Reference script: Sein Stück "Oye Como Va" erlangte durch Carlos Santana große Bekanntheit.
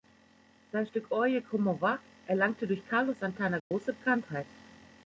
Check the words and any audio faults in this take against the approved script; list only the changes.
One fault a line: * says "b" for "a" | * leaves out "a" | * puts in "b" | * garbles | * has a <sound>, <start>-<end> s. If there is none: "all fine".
* has a dropout, 3.6-3.7 s